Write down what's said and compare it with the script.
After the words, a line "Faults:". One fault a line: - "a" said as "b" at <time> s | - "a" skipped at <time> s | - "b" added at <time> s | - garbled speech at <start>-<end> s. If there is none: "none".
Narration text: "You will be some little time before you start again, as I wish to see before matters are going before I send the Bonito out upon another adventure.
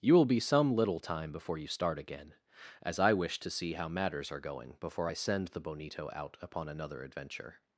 "You will be some little time before you start again, as I wish to see how matters are going before I send the Bonito out upon another adventure.
Faults:
- "before" said as "how" at 3.7 s